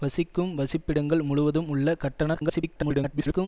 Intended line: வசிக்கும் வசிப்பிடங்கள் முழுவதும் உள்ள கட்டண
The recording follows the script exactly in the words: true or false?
false